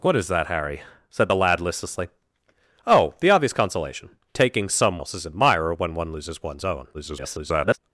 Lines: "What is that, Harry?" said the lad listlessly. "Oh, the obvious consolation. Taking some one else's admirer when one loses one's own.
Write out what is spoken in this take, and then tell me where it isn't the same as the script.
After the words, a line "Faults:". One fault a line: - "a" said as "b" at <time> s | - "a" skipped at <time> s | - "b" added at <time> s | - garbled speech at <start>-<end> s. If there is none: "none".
"What is that, Harry?" said the lad listlessly. "Oh, the obvious consolation. Taking some else's admirer when one loses one's own. [garbled]
Faults:
- "one" skipped at 5.0 s
- garbled speech at 6.9-7.8 s